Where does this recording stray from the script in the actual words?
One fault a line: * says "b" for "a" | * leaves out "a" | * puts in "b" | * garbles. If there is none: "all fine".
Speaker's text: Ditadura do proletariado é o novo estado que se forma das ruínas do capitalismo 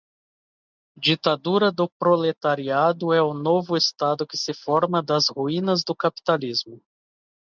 all fine